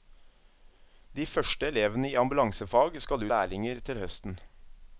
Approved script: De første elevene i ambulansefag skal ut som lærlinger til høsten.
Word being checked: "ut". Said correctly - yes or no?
no